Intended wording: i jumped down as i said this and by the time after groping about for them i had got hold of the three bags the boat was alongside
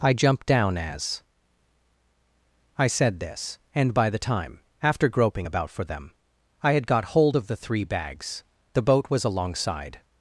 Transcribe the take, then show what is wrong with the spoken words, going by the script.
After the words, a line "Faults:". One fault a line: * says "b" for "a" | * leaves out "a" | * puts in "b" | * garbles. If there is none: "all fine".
i jumped down as i said this and by the time after groping about for them i had got hold of the three bags the boat was alongside
Faults:
all fine